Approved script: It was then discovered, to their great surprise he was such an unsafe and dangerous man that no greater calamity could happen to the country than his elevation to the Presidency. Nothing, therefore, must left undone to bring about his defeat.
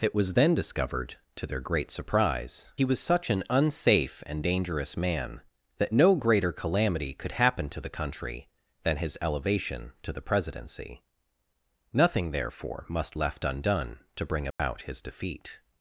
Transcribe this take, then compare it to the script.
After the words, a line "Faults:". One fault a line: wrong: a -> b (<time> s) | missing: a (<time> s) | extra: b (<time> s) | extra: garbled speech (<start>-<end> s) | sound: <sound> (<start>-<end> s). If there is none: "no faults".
It was then discovered, to their great surprise he was such an unsafe and dangerous man that no greater calamity could happen to the country than his elevation to the Presidency. Nothing, therefore, must left undone to bring about his defeat.
Faults:
sound: dropout (14.5-14.6 s)